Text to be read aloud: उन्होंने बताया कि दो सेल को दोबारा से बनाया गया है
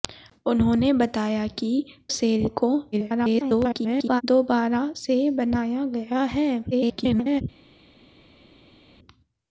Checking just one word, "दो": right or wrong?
wrong